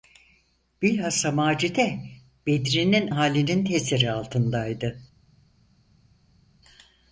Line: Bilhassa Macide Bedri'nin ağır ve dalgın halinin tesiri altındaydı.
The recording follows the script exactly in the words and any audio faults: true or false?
false